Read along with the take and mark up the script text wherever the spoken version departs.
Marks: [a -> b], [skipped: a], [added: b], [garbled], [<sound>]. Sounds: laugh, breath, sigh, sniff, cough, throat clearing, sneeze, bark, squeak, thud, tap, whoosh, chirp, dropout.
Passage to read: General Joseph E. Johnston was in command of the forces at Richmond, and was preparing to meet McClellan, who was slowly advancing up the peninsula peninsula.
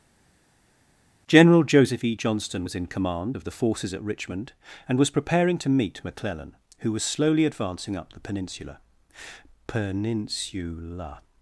General Joseph E. Johnston was in command of the forces at Richmond, and was preparing to meet McClellan, who was slowly advancing up the peninsula peninsula.